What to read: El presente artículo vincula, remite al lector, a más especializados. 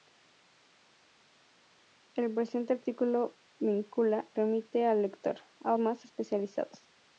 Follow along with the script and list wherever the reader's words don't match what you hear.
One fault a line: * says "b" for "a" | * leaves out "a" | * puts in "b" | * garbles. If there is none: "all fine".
all fine